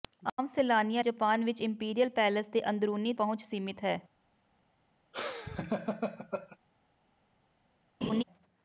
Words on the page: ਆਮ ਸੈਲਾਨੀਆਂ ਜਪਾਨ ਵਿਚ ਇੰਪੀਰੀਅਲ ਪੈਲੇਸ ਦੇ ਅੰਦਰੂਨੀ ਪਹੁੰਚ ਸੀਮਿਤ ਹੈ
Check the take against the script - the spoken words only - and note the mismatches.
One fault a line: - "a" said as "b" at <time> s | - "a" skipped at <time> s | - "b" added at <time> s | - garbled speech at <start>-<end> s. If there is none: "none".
none